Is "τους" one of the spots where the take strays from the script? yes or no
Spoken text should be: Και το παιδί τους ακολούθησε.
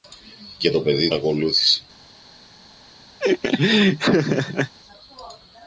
yes